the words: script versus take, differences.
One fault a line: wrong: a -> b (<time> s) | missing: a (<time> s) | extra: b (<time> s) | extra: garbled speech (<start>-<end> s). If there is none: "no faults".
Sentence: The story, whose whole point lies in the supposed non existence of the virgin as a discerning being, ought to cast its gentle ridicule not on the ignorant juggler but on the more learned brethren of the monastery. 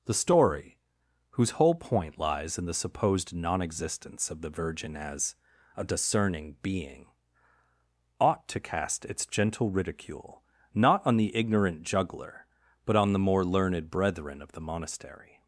no faults